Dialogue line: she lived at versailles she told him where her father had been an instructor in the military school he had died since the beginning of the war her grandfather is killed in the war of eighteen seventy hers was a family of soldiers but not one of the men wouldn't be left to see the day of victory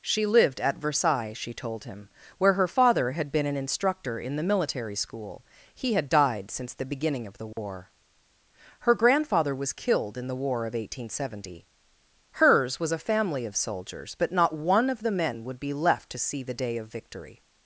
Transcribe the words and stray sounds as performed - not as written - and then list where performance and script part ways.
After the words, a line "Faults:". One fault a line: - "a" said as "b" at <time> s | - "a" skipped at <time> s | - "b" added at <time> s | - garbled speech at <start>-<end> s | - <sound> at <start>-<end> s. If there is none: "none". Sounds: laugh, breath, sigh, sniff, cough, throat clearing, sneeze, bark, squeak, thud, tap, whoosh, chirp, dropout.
she lived at versailles she told him where her father had been an instructor in the military school he had died since the beginning of the war her grandfather was killed in the war of eighteen seventy hers was a family of soldiers but not one of the men would be left to see the day of victory
Faults:
- dropout at 7.5-7.6 s
- "is" said as "was" at 9.6 s
- "wouldn't" said as "would" at 15.4 s